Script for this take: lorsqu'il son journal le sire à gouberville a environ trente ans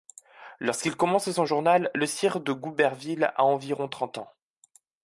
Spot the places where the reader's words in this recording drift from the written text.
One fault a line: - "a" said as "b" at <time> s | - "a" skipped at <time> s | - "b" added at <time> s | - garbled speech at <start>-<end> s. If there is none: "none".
- "commence" added at 0.9 s
- "à" said as "de" at 2.4 s